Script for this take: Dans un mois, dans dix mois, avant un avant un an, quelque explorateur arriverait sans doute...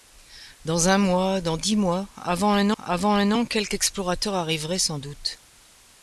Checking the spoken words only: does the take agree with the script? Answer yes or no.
yes